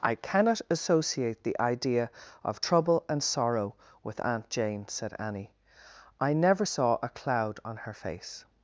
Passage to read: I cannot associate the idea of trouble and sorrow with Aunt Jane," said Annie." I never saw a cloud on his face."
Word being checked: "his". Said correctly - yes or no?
no